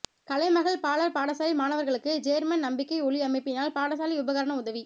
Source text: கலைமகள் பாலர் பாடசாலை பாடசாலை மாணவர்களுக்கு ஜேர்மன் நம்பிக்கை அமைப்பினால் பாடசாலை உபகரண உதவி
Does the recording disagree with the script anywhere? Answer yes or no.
yes